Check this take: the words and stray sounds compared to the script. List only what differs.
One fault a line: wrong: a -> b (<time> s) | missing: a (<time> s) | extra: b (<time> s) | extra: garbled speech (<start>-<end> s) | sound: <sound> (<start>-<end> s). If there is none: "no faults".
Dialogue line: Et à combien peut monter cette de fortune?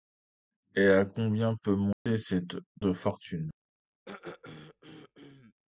sound: dropout (1.9-2.1 s)
sound: throat clearing (4.1-5.5 s)